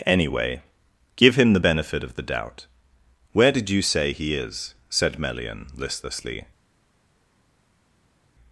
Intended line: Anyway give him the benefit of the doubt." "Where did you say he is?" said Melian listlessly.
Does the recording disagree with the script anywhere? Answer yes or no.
no